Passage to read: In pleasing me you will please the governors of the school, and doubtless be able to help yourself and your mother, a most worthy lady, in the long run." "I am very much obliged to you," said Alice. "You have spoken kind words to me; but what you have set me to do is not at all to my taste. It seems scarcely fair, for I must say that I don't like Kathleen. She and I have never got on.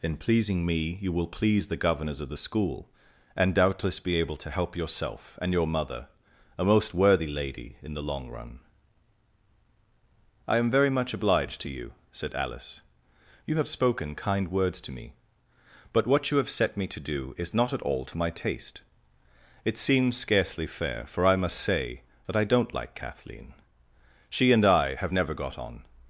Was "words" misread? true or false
false